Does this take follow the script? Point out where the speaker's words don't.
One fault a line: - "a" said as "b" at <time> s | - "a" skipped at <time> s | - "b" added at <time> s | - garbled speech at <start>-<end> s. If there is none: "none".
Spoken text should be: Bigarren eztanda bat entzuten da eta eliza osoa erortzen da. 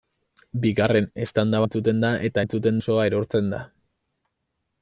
- "bat" skipped at 1.6 s
- "eliza" said as "entzuten" at 2.4 s